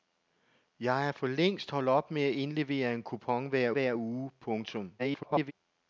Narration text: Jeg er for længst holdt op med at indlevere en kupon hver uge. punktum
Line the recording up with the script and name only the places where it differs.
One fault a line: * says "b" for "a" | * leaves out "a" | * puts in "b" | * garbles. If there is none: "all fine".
* puts in "hver"
* garbles